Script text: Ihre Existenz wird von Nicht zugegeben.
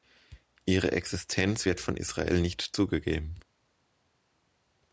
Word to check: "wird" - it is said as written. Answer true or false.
true